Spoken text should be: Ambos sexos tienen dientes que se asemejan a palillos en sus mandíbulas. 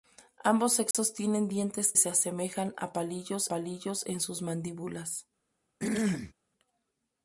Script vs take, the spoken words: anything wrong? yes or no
yes